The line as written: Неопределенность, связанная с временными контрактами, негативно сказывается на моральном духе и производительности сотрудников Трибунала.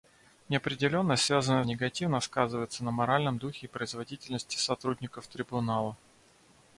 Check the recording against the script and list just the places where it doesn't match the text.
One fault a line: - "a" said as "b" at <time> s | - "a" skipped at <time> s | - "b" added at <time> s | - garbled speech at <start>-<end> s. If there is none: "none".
- "с временными контрактами" skipped at 1.6 s